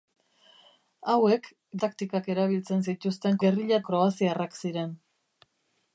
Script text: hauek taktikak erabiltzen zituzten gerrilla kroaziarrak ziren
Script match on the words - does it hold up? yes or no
yes